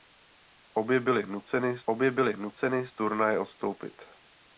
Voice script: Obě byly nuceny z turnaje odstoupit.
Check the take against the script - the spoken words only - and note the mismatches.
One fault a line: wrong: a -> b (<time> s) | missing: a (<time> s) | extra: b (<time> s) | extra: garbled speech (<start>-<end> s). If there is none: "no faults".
extra: obě byly nuceny (1.8 s)